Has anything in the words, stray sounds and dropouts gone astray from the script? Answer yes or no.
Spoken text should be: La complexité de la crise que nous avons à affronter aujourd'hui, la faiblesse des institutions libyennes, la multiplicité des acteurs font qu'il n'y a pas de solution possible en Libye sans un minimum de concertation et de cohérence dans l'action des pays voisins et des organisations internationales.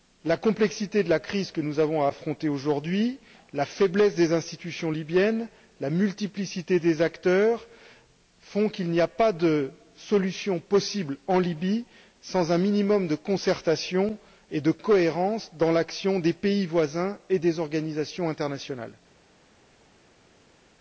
no